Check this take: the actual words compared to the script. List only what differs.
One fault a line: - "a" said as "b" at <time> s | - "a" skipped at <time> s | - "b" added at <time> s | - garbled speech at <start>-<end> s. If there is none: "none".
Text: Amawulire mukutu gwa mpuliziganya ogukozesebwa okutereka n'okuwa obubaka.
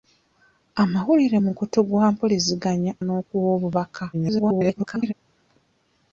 - "ogukozesebwa okutereka" skipped at 2.9 s
- garbled speech at 4.1-5.1 s